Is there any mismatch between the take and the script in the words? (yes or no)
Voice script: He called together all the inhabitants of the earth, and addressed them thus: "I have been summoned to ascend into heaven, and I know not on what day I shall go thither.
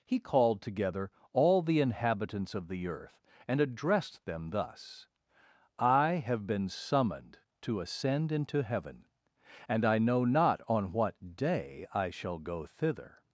no